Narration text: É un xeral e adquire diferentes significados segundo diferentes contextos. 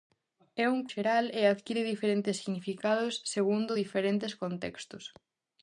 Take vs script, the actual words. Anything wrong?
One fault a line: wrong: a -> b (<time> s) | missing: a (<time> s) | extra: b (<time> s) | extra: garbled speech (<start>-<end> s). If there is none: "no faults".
no faults